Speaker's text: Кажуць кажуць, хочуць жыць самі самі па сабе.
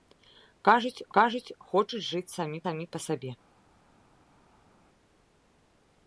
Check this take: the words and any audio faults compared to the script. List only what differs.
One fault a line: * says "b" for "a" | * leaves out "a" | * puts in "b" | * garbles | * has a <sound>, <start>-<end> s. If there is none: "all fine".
all fine